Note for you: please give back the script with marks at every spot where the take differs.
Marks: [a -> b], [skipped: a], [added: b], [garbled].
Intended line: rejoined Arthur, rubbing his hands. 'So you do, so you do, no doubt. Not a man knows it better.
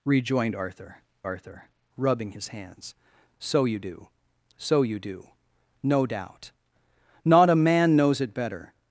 rejoined Arthur, [added: Arthur] rubbing his hands. 'So you do, so you do, no doubt. Not a man knows it better.